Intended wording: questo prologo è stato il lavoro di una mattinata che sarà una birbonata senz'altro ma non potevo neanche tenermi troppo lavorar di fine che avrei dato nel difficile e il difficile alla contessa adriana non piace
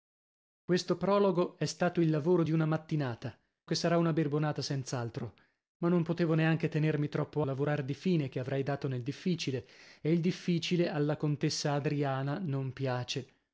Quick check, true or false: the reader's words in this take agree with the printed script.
true